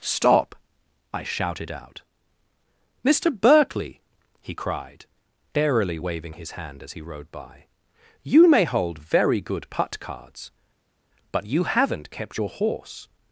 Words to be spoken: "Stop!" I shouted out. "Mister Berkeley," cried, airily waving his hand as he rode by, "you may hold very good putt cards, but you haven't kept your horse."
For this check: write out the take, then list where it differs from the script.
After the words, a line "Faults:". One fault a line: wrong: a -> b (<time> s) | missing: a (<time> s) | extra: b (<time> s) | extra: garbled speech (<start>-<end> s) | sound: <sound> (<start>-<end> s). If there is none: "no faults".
"Stop!" I shouted out. "Mister Berkeley," he cried, airily waving his hand as he rode by, "you may hold very good putt cards, but you haven't kept your horse."
Faults:
extra: he (4.4 s)